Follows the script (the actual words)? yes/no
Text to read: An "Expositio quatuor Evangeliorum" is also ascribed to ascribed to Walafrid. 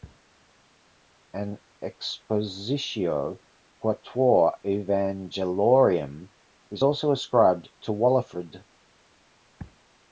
no